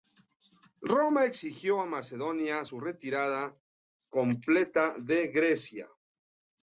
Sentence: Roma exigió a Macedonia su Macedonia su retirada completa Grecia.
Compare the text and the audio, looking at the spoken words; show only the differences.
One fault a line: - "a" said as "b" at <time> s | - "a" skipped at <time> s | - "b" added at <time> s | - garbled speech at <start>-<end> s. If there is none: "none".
- "Macedonia su" skipped at 2.8 s
- "de" added at 5.0 s